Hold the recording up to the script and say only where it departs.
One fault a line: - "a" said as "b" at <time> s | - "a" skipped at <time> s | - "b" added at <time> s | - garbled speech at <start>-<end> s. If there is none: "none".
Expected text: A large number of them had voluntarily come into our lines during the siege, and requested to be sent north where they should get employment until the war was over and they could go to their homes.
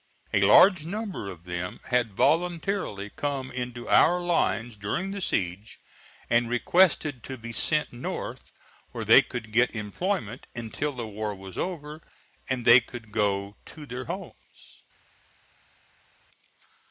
- "should" said as "could" at 9.2 s